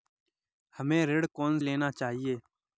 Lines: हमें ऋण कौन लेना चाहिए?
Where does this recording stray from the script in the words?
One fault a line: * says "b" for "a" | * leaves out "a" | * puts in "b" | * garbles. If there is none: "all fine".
all fine